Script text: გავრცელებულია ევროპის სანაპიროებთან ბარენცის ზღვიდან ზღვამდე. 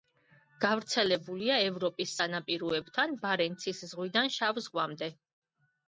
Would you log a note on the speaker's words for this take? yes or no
yes